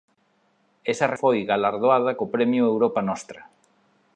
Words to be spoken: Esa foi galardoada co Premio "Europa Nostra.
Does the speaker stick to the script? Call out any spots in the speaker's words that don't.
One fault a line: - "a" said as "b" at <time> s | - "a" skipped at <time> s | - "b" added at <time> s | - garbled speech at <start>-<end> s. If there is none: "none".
none